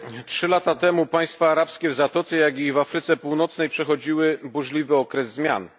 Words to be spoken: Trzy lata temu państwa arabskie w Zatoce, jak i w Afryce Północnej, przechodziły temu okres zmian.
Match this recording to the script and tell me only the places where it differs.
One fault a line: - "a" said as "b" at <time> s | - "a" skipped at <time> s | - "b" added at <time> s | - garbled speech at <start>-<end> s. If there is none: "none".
- "temu" said as "burzliwy" at 4.4 s